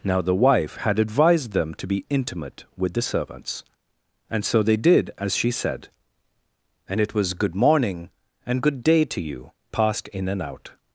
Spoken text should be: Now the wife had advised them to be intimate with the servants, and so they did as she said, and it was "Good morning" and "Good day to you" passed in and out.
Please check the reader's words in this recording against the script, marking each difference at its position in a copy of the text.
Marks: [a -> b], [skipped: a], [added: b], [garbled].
Now the wife had advised them to be intimate with the servants, and so they did as she said, and it was "Good morning" and "Good day to you" passed in and out.